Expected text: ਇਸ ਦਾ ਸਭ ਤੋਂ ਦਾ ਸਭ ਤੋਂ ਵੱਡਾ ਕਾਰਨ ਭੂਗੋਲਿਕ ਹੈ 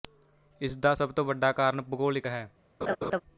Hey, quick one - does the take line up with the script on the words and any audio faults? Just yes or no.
no